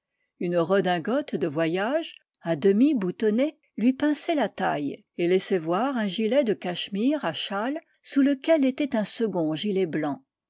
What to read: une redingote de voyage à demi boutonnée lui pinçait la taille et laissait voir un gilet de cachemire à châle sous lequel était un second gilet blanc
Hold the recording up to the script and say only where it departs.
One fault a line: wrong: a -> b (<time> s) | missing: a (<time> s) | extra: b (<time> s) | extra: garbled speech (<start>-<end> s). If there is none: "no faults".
no faults